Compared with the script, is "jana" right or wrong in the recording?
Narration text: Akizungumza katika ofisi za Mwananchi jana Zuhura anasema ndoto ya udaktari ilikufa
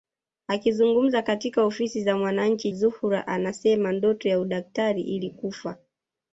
wrong